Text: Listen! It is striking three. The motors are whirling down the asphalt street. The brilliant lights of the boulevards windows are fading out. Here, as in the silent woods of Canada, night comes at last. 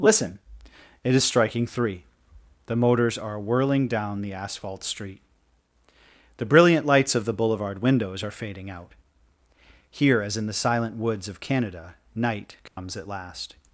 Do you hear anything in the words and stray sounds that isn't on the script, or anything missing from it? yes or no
yes